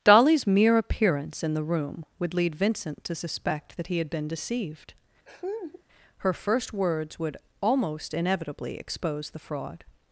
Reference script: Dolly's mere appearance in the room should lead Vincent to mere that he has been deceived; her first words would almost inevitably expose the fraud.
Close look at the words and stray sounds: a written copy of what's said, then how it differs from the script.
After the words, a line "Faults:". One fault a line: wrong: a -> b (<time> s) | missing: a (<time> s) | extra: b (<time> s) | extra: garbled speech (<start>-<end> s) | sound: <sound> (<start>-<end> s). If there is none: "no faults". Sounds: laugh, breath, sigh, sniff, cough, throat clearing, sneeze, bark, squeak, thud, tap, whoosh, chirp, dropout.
Dolly's mere appearance in the room would lead Vincent to suspect that he had been deceived; her first words would almost inevitably expose the fraud.
Faults:
wrong: should -> would (2.2 s)
wrong: mere -> suspect (3.1 s)
wrong: has -> had (4.0 s)
sound: laugh (5.3-5.8 s)